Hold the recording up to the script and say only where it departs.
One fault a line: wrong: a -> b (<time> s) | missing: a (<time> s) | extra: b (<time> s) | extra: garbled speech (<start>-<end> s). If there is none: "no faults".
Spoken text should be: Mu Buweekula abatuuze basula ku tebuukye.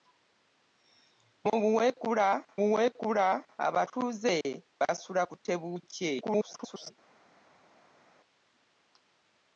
extra: Buweekula (2.6 s)
extra: garbled speech (6.2-6.9 s)